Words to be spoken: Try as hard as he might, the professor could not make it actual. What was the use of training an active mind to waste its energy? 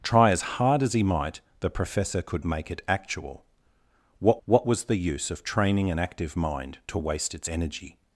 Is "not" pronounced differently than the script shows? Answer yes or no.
yes